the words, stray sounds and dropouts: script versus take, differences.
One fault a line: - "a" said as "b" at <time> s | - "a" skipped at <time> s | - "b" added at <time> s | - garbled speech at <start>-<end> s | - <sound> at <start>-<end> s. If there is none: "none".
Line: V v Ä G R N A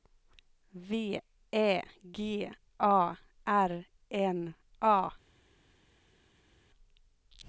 - "v" skipped at 1.2 s
- "A" added at 2.8 s